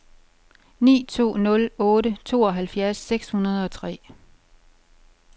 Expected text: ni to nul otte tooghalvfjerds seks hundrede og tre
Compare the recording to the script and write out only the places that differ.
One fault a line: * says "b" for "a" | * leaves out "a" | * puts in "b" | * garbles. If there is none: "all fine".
all fine